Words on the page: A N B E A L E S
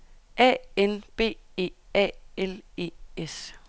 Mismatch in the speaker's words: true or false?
false